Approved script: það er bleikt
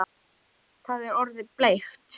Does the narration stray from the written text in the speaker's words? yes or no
yes